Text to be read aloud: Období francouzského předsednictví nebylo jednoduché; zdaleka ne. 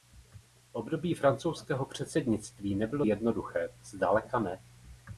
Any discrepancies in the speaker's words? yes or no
no